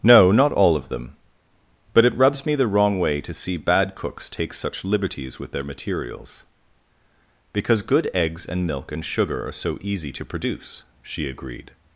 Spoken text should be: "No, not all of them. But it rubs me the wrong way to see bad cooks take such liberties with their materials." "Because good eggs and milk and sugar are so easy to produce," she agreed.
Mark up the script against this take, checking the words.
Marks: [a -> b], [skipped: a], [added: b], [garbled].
"No, not all of them. But it rubs me the wrong way to see bad cooks take such liberties with their materials." "Because good eggs and milk and sugar are so easy to produce," she agreed.